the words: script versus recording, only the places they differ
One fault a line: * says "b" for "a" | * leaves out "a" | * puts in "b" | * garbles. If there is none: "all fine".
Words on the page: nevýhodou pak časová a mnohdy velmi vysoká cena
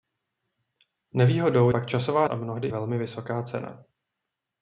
all fine